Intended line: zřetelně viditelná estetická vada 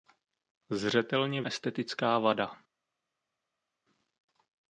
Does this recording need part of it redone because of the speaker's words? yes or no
yes